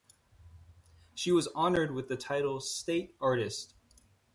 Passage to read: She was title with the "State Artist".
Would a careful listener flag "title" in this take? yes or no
yes